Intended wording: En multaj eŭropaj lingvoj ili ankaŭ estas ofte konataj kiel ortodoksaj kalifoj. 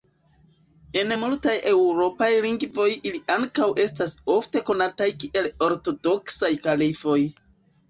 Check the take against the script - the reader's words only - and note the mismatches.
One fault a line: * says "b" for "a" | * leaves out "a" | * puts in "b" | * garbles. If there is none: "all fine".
all fine